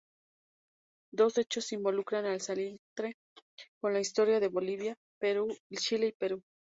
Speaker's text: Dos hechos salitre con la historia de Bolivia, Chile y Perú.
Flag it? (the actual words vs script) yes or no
yes